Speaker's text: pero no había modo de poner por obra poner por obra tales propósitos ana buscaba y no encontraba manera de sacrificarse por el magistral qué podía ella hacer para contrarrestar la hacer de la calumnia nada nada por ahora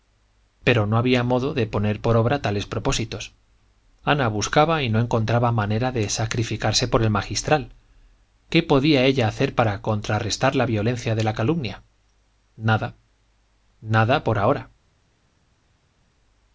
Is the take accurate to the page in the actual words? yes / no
no